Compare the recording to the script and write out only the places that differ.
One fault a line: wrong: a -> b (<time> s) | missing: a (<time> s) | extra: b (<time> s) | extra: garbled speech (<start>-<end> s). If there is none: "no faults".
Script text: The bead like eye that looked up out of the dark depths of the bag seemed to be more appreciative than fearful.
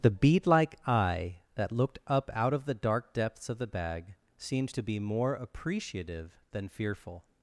no faults